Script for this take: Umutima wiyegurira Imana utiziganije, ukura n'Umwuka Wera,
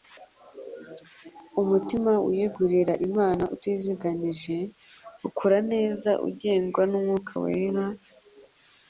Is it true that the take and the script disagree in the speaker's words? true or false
true